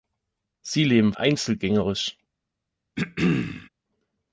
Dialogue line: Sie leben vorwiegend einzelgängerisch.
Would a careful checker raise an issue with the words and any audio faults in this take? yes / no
yes